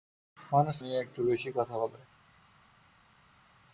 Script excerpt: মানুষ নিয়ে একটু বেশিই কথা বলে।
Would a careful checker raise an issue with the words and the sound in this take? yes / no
no